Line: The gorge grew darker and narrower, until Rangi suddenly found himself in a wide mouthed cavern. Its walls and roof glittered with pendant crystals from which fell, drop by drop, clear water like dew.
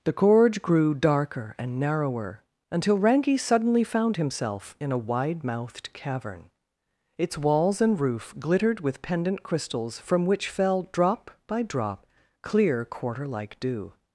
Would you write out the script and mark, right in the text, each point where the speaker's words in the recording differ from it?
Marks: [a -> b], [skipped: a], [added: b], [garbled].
The gorge grew darker and narrower, until Rangi suddenly found himself in a wide mouthed cavern. Its walls and roof glittered with pendant crystals from which fell, drop by drop, clear [water -> quarter] like dew.